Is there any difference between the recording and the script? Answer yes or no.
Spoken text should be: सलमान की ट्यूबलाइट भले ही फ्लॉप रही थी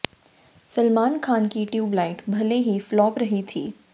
yes